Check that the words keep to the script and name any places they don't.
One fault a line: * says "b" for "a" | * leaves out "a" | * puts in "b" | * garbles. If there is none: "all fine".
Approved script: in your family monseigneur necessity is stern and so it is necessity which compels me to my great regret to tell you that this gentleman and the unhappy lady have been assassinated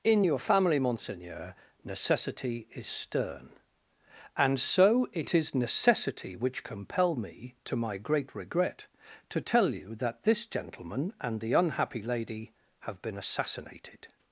* says "compel" for "compels"